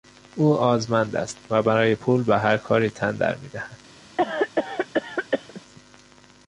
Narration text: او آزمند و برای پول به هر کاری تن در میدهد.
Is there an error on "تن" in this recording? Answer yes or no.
no